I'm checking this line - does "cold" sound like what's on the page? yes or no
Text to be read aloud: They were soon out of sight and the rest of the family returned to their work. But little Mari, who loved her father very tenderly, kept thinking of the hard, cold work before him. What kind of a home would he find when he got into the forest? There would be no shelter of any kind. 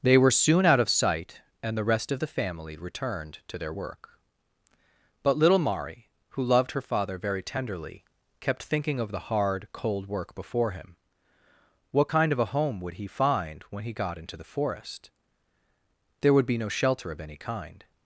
yes